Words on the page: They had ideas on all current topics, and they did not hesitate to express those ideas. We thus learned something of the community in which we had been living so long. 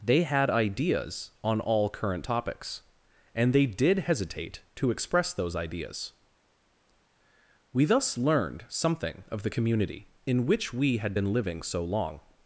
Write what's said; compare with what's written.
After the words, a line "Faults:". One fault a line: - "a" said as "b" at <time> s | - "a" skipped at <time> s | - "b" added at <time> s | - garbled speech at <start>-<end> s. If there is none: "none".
They had ideas on all current topics, and they did hesitate to express those ideas. We thus learned something of the community in which we had been living so long.
Faults:
- "not" skipped at 4.0 s